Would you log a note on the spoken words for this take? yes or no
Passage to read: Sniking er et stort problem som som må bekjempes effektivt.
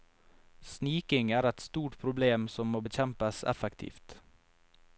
yes